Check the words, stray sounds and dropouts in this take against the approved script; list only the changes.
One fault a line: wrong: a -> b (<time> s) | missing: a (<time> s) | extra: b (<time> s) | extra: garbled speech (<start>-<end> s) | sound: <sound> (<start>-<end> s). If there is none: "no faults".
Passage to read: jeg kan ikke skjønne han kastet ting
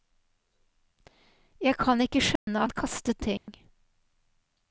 sound: dropout (2.4-2.5 s)
sound: dropout (3.4-3.5 s)